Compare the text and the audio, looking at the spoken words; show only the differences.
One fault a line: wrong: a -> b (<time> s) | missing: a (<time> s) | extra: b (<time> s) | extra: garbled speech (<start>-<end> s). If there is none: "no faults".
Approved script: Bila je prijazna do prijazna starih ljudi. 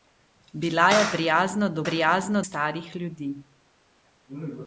no faults